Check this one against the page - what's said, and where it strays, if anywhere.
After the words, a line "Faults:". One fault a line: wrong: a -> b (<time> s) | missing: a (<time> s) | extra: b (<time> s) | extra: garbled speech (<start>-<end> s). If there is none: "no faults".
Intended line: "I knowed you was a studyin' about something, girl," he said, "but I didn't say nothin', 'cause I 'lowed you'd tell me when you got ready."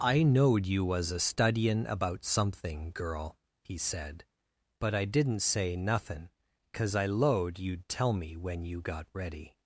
"I knowed you was a studyin' about something, girl," he said, "but I didn't say nothin', 'cause I 'lowed you'd tell me when you got ready."
Faults:
no faults